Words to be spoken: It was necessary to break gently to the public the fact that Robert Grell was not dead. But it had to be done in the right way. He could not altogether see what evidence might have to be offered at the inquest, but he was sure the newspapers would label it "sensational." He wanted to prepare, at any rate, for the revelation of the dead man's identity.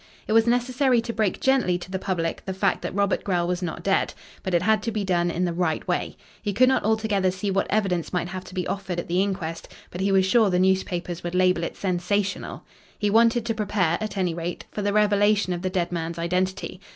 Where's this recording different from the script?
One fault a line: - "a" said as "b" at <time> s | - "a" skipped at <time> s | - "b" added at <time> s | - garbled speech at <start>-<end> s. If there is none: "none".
none